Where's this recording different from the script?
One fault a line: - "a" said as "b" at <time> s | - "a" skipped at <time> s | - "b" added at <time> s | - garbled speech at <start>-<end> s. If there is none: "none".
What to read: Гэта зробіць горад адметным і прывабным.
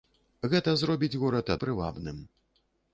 - "адметным" skipped at 1.5 s